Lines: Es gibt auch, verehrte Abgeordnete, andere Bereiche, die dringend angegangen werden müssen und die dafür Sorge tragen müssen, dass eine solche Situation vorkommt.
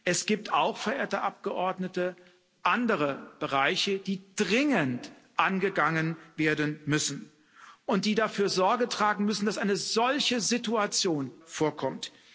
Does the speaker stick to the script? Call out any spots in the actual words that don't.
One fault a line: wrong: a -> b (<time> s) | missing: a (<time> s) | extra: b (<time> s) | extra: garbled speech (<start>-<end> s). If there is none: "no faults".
no faults